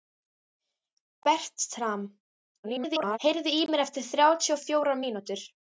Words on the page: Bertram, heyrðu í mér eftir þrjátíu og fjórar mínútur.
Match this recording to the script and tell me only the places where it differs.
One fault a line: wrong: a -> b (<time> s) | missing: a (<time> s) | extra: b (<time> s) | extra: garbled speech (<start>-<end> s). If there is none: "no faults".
extra: garbled speech (2.6-3.2 s)